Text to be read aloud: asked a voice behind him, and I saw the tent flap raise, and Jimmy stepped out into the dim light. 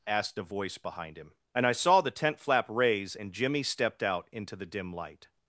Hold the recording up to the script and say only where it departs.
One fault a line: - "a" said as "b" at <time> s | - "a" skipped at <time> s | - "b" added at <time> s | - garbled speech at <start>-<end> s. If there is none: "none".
none